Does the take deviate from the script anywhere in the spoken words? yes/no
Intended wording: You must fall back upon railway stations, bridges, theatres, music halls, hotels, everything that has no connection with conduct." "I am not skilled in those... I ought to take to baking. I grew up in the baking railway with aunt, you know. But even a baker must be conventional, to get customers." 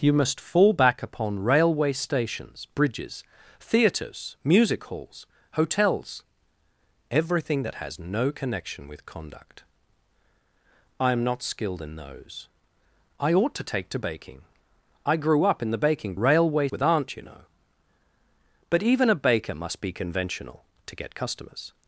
no